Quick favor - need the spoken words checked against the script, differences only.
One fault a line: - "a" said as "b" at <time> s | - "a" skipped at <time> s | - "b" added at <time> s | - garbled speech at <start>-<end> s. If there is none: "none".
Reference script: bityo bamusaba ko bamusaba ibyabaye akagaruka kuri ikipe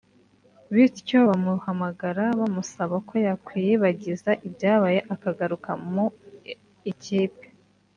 - "bamuhamagara" added at 1.3 s
- "bamusaba" said as "yakwiyibagiza" at 3.3 s
- "kuri" said as "mu" at 5.9 s